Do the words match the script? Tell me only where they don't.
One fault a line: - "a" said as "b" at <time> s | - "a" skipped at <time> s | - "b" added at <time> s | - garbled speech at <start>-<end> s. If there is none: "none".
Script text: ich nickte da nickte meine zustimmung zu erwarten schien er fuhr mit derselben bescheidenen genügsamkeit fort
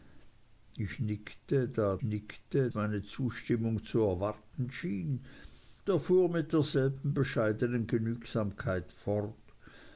none